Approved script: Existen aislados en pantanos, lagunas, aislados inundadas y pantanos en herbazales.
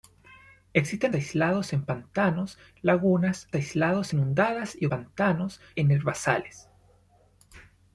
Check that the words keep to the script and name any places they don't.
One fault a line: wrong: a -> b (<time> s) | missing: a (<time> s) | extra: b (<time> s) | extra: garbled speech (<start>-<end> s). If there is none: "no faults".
no faults